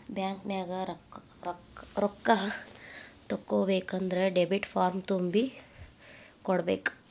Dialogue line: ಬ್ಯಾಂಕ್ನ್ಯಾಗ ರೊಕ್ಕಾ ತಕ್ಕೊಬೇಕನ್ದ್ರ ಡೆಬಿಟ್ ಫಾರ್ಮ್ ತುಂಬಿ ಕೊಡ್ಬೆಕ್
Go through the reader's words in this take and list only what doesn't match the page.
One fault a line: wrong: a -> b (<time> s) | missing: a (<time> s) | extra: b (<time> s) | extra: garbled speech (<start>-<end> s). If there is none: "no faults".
no faults